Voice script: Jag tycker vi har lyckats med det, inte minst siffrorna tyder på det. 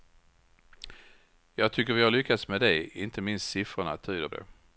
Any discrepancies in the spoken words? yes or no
yes